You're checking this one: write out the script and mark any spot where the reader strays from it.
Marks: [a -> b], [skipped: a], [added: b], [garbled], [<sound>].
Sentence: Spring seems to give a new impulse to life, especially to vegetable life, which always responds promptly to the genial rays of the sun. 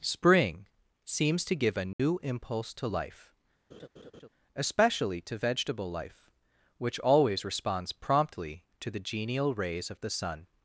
Spring seems to give a new [dropout] impulse to life, [laugh] especially to vegetable life, which always responds promptly to the genial rays of the sun.